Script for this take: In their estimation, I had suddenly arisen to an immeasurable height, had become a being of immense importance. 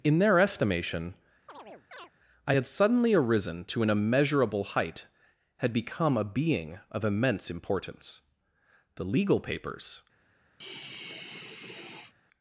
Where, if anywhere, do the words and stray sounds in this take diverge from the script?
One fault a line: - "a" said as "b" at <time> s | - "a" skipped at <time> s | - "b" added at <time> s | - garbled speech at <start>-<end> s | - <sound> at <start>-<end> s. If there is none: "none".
- chirp at 1.5-2.1 s
- "The legal papers" added at 9.0 s
- sigh at 10.6-12.1 s